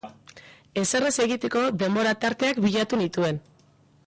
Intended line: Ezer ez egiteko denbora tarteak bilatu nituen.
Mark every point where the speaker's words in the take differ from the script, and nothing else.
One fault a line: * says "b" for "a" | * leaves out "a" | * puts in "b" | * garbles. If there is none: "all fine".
all fine